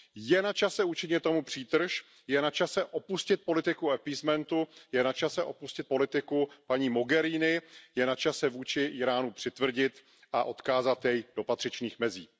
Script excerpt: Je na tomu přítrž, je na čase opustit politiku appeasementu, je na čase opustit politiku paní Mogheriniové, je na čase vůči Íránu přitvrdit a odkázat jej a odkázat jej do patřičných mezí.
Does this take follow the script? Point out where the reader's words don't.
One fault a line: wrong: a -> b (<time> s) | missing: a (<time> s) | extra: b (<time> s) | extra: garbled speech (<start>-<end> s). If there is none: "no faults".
extra: čase učinit (0.5 s)
missing: a odkázat jej (11.2 s)